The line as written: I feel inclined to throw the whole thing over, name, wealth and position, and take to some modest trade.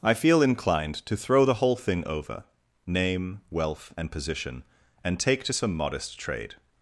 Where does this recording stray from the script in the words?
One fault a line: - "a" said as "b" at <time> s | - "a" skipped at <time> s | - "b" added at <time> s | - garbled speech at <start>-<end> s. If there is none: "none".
none